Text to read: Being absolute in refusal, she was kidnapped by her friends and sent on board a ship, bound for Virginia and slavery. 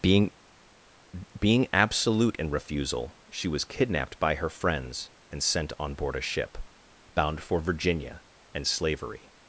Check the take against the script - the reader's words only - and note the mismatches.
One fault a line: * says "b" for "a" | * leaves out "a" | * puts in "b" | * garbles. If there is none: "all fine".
* puts in "being"